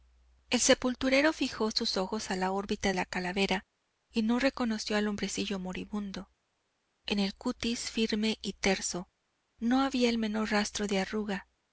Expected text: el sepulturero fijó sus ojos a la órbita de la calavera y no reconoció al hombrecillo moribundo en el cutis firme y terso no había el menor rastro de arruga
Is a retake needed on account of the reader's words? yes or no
yes